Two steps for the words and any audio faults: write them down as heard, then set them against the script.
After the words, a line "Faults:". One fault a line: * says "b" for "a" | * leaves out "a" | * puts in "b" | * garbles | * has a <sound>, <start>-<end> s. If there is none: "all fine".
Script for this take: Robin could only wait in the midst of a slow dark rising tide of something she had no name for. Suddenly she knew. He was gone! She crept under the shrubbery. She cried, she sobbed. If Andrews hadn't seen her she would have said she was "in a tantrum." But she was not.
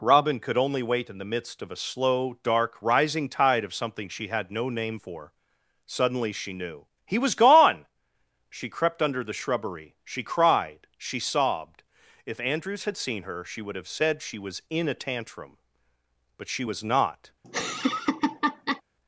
Robin could only wait in the midst of a slow dark rising tide of something she had no name for. Suddenly she knew. He was gone! She crept under the shrubbery. She cried, she sobbed. If Andrews had seen her she would have said she was "in a tantrum." But she was not.
Faults:
* says "had" for "hadn't"
* has a laugh, 17.4-18.8 s